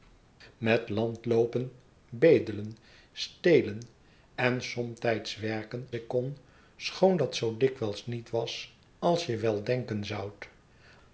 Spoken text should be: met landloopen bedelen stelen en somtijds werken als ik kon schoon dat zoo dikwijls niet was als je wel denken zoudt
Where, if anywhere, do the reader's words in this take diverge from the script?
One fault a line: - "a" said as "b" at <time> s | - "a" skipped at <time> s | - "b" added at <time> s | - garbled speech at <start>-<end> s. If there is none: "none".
- "als" skipped at 5.9 s